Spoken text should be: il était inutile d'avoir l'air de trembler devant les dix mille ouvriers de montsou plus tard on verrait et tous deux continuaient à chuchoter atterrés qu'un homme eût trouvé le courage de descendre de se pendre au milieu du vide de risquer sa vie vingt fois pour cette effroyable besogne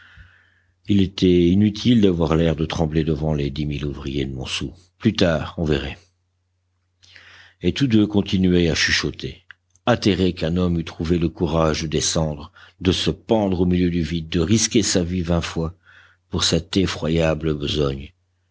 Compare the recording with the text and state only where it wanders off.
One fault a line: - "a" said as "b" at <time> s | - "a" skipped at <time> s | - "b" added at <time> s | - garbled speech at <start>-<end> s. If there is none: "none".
none